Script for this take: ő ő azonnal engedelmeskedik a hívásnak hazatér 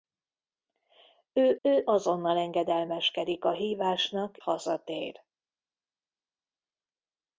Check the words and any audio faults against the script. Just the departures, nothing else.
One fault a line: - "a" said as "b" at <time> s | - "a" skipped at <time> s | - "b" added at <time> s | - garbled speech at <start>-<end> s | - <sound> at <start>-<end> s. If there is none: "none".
none